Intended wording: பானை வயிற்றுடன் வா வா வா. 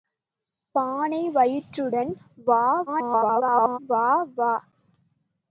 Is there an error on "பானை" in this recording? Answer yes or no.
no